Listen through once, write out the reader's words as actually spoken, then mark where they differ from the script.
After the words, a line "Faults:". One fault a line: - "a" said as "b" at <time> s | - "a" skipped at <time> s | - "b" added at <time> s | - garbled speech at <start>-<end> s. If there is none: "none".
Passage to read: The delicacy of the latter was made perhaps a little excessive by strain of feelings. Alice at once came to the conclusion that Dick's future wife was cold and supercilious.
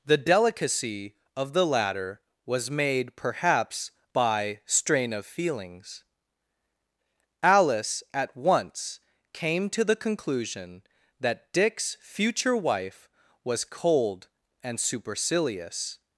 The delicacy of the latter was made perhaps by strain of feelings. Alice at once came to the conclusion that Dick's future wife was cold and supercilious.
Faults:
- "a little excessive" skipped at 3.9 s